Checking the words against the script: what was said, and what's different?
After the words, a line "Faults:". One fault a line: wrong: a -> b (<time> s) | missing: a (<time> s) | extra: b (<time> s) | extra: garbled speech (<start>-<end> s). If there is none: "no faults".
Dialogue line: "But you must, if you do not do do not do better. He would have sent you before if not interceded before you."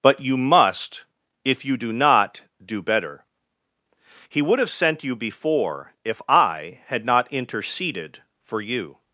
"But you must, if you do not do better. He would have sent you before if I had not interceded for you."
Faults:
missing: do not do (2.8 s)
extra: I had (6.3 s)
wrong: before -> for (8.4 s)